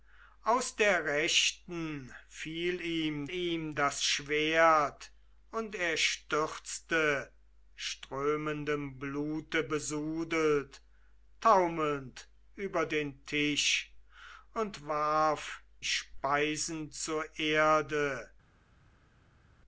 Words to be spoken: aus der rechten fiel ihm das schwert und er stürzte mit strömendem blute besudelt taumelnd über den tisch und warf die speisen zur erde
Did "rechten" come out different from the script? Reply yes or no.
no